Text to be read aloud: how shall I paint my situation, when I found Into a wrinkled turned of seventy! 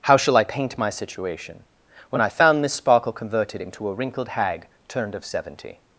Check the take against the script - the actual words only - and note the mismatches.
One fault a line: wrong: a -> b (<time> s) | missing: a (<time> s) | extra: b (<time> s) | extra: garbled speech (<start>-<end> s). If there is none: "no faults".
extra: Miss Sparkle converted (2.6 s)
extra: hag (4.3 s)